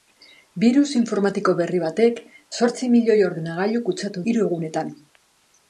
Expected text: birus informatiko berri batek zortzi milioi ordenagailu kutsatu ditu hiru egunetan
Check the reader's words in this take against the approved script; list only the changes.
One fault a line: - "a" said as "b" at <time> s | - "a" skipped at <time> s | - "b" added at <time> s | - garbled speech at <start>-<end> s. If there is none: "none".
- "ditu" skipped at 4.2 s